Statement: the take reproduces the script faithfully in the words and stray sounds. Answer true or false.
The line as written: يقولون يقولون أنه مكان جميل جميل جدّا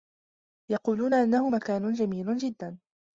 false